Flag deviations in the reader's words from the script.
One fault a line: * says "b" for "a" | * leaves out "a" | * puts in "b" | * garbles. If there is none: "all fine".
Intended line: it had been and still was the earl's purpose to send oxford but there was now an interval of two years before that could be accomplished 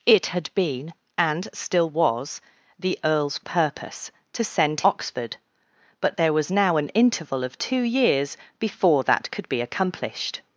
all fine